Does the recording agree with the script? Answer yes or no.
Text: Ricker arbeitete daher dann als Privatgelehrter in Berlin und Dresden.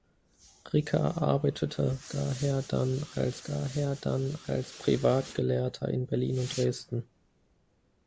no